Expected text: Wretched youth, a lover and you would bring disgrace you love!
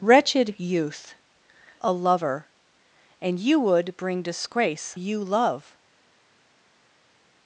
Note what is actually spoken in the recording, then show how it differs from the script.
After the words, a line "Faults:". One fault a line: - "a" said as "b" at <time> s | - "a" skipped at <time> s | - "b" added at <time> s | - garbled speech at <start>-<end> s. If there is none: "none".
Wretched youth, a lover and you would bring disgrace you love!
Faults:
none